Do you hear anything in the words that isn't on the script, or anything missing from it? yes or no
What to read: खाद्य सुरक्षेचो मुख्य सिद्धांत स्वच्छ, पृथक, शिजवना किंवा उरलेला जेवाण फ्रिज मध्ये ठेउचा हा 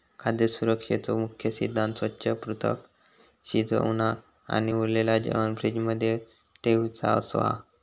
yes